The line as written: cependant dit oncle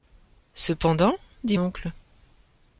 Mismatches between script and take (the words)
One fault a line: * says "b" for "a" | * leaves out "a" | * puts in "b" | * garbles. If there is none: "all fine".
all fine